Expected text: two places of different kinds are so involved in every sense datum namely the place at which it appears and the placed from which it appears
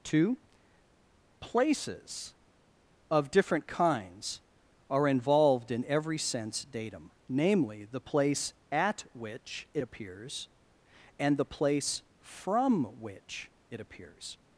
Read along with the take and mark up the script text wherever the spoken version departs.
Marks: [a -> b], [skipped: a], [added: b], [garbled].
two places of different kinds are [skipped: so] involved in every sense datum namely the place at which it appears and the [placed -> place] from which it appears